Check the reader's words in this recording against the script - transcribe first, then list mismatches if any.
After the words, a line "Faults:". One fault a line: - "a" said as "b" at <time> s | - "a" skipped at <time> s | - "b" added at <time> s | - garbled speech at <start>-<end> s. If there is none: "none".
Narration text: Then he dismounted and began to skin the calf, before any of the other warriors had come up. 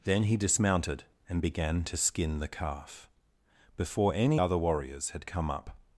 Then he dismounted and began to skin the calf, before any other warriors had come up.
Faults:
- "of the" skipped at 4.4 s